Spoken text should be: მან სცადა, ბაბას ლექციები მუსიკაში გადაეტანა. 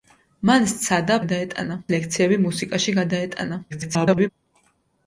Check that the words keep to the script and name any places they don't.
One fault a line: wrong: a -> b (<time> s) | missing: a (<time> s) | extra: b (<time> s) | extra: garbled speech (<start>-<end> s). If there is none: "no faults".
wrong: ბაბას -> გადაეტანა (1.2 s)
extra: garbled speech (3.7-4.3 s)